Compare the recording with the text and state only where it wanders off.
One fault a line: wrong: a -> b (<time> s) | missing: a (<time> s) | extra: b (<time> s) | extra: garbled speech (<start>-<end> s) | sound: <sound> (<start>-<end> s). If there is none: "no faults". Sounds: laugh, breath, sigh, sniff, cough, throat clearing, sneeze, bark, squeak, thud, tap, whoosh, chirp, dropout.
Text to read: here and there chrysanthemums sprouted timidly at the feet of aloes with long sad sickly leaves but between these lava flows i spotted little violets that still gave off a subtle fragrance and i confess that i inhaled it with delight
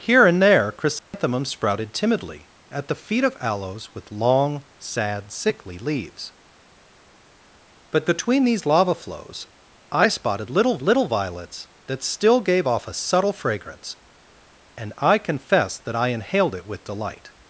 sound: dropout (1.0-1.1 s)
extra: little (10.8 s)